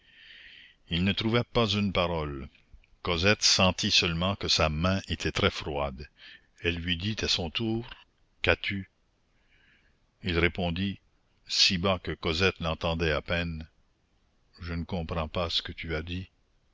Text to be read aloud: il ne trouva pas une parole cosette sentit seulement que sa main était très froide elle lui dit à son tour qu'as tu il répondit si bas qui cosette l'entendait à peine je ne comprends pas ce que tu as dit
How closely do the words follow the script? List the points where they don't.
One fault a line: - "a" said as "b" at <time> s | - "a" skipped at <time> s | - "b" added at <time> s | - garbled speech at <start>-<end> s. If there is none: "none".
- "qui" said as "que" at 12.0 s